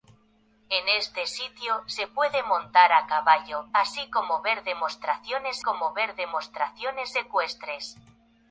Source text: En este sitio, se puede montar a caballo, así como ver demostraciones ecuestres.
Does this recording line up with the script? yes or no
no